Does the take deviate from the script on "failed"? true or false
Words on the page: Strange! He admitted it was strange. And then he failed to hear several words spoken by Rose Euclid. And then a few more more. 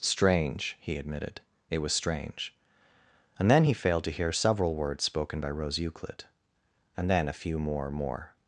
false